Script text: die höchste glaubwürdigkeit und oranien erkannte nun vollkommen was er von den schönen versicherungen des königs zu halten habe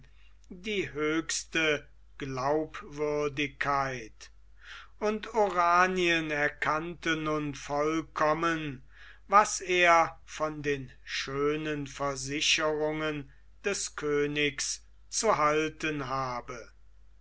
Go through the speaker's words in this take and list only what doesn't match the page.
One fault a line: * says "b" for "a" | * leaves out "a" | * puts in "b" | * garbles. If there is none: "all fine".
all fine